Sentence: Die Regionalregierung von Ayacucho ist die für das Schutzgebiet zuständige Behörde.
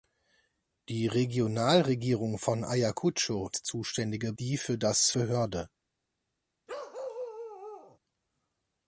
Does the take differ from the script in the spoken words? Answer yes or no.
yes